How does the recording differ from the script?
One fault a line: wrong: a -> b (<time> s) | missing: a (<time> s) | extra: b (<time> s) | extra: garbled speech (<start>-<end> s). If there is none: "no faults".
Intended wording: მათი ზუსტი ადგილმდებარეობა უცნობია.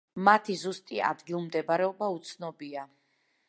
no faults